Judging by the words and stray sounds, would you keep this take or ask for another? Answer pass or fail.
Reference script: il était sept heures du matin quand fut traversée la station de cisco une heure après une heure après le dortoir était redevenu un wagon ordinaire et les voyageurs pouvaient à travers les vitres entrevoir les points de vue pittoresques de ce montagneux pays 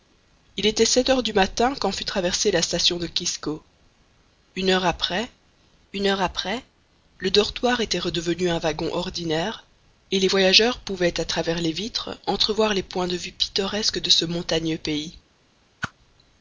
fail